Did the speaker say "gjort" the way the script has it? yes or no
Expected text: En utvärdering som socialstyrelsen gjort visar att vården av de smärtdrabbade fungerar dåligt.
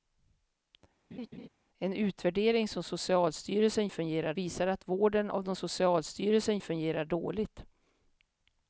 no